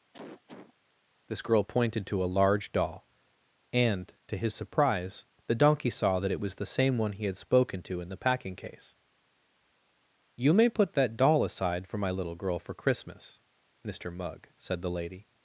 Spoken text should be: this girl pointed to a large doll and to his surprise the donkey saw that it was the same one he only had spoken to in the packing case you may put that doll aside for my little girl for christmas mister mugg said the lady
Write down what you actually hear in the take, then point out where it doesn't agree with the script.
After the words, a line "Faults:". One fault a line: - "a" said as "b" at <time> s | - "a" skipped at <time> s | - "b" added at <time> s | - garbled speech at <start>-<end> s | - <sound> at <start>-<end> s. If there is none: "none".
this girl pointed to a large doll and to his surprise the donkey saw that it was the same one he had spoken to in the packing case you may put that doll aside for my little girl for christmas mister mugg said the lady
Faults:
- cough at 0.1-0.7 s
- "only" skipped at 7.2 s